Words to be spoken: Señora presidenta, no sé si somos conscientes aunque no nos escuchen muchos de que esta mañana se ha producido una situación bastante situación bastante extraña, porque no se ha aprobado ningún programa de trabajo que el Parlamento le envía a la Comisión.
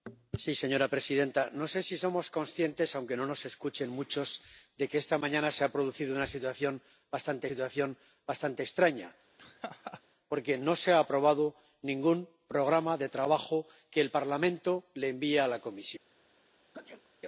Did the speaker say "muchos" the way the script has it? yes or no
yes